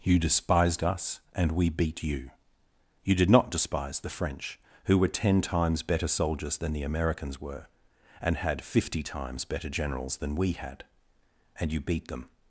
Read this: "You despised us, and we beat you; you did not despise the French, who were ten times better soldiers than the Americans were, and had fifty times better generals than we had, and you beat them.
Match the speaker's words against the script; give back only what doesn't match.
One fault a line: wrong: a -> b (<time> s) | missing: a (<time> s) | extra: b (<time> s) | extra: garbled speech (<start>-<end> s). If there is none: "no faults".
no faults